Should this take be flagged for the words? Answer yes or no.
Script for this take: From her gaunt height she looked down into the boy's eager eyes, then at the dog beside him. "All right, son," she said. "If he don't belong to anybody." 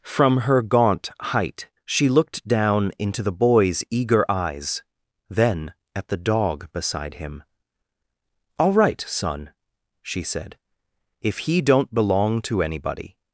no